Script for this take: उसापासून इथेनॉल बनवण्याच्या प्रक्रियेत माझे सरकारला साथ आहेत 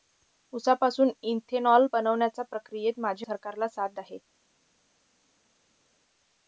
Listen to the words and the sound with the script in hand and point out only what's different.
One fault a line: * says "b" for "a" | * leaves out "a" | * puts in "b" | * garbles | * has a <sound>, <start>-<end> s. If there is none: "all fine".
all fine